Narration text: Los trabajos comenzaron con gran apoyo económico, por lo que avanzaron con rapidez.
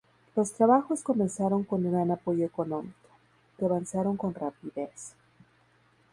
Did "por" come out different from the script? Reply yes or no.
yes